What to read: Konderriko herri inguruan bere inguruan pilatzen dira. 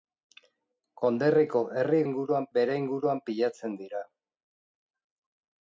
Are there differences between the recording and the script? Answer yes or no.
no